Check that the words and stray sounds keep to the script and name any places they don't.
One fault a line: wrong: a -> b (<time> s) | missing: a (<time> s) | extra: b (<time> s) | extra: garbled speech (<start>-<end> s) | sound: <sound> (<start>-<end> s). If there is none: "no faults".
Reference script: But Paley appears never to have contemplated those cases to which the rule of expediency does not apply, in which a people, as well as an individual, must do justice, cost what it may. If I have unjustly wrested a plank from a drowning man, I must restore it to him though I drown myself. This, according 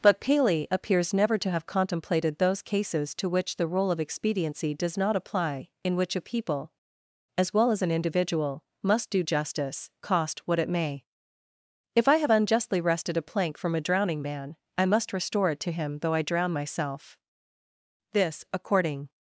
no faults